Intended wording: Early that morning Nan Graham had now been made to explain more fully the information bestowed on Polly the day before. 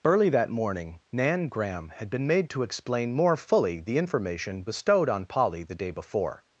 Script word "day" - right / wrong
right